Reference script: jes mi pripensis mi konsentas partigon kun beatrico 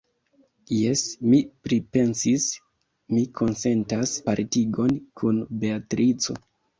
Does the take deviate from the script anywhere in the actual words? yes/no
no